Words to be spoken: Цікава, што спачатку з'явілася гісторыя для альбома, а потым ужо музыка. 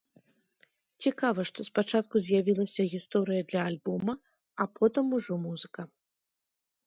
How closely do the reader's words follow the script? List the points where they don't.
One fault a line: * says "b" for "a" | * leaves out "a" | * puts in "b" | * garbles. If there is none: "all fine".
all fine